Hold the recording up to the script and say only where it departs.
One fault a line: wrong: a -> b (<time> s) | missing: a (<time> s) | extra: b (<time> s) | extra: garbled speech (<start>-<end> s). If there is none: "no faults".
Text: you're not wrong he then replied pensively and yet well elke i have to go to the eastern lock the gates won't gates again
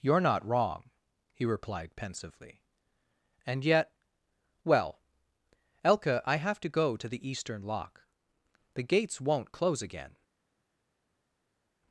missing: then (1.4 s)
wrong: gates -> close (9.5 s)